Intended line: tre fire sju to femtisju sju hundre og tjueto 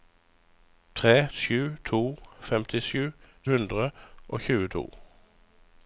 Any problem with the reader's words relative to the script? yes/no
yes